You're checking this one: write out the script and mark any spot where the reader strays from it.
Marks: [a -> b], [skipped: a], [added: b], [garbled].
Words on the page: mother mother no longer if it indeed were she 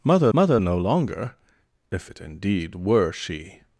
mother mother no longer if it indeed were she